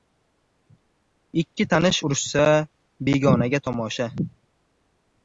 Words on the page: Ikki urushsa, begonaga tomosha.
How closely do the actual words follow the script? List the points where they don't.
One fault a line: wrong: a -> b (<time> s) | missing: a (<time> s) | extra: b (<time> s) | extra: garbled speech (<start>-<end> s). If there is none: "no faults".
extra: tanish (1.7 s)